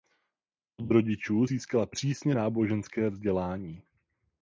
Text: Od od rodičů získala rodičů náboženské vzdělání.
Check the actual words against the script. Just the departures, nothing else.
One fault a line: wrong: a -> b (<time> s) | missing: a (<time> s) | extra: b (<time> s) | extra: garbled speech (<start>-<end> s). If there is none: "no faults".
missing: od (0.9 s)
wrong: rodičů -> přísně (1.9 s)